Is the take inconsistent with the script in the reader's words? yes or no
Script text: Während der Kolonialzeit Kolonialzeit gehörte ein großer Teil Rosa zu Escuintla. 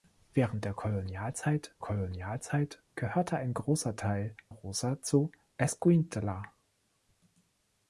no